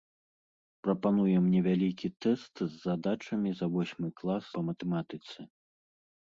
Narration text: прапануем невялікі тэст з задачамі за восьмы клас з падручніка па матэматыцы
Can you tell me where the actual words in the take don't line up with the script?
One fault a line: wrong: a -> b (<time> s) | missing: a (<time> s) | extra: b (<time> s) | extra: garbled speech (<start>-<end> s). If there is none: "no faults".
missing: з падручніка (4.4 s)